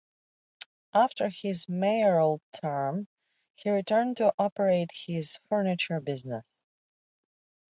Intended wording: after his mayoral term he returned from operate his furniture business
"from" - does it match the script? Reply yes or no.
no